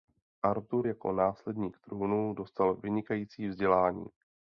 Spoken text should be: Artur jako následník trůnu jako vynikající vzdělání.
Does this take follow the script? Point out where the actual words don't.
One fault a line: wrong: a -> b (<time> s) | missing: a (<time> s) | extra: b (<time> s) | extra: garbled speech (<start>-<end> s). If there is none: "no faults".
wrong: jako -> dostal (2.3 s)